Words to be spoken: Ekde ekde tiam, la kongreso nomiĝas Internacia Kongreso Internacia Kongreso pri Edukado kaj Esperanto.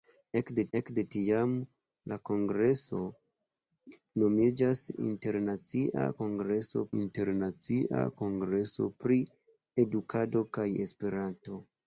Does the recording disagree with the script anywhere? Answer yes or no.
no